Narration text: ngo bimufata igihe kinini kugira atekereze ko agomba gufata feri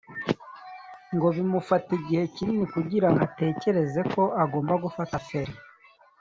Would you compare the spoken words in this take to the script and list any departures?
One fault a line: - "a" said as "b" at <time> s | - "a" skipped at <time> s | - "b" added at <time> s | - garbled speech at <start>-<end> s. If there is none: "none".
none